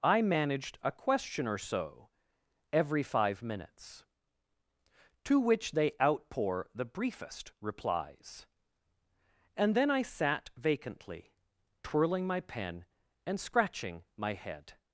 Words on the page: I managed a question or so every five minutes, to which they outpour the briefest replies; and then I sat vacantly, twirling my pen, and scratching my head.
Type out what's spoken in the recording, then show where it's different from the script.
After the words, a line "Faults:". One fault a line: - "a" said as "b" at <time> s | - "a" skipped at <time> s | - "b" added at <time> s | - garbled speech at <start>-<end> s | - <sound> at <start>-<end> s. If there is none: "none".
I managed a question or so every five minutes, to which they outpour the briefest replies; and then I sat vacantly, twirling my pen, and scratching my head.
Faults:
none